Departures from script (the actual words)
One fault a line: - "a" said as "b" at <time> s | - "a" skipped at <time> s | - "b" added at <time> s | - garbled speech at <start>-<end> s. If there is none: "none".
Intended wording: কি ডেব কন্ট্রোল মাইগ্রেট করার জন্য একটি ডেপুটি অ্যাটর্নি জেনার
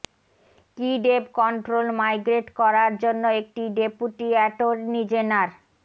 none